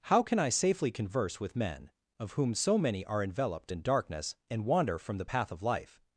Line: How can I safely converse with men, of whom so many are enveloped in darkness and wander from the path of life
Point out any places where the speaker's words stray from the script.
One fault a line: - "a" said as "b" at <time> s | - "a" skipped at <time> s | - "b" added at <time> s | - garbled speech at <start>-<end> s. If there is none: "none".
none